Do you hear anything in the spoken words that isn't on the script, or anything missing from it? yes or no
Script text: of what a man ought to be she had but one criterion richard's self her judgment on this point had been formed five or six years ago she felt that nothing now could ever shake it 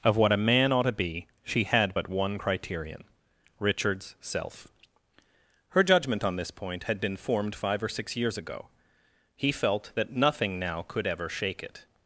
yes